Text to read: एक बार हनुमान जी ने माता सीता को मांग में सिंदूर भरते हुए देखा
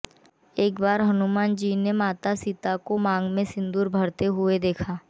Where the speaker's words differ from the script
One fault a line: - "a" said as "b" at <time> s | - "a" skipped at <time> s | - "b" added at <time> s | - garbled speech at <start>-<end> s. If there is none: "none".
none